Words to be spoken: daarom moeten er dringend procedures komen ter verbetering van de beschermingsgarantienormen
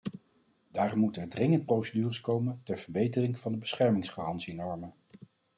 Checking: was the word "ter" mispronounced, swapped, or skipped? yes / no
no